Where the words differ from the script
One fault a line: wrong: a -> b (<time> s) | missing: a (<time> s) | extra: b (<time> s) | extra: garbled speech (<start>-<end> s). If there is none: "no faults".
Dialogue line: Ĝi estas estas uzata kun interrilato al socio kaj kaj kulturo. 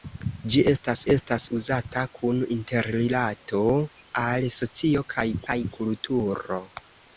no faults